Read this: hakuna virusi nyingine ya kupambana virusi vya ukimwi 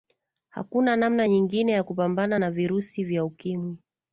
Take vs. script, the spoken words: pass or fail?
fail